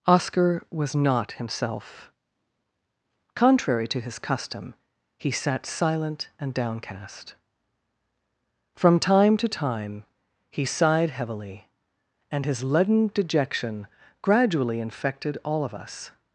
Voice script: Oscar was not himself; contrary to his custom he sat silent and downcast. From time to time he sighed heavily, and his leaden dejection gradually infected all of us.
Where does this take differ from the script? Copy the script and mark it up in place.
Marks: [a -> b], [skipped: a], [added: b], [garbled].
Oscar was not himself; contrary to his custom he sat silent and downcast. From time to time he sighed heavily, and his leaden dejection gradually infected all of us.